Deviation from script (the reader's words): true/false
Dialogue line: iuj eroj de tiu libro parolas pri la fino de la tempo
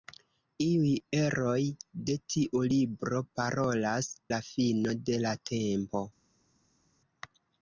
true